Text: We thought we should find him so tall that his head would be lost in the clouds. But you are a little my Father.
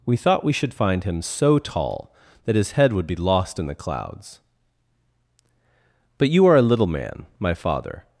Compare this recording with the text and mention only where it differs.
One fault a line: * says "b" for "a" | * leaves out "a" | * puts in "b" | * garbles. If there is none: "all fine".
* puts in "man"